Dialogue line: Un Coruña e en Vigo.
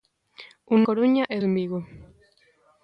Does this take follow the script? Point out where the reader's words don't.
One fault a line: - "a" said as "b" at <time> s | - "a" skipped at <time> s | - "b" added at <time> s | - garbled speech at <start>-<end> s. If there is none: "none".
none